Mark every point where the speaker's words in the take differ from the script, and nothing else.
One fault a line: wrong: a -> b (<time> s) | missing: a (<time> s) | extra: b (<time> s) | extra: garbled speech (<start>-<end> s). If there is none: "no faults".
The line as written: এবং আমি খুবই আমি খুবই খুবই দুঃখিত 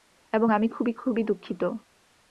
missing: আমি খুবই (0.9 s)